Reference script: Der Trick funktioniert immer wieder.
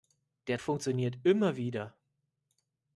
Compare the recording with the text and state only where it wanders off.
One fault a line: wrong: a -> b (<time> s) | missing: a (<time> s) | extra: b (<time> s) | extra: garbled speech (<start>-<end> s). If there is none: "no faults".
missing: Trick (0.6 s)